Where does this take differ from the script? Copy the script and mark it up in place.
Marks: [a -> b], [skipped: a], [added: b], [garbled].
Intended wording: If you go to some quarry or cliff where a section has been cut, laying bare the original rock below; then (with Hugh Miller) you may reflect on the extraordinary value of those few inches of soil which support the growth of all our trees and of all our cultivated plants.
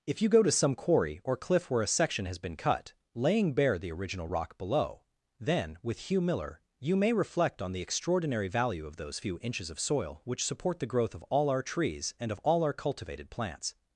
If you go to some quarry or cliff where a section has been cut, laying bare the original rock below; then (with Hugh Miller) you may reflect on the extraordinary value of those few inches of soil which support the growth of all our trees and of all our cultivated plants.